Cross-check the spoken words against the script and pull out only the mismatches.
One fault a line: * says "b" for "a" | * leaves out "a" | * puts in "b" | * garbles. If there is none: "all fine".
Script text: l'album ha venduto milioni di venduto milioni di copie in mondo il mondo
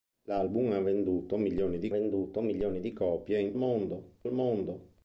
all fine